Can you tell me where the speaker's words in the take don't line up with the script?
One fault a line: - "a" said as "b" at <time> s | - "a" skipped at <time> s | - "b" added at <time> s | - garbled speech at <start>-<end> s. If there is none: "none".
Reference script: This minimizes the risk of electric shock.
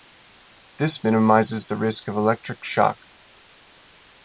none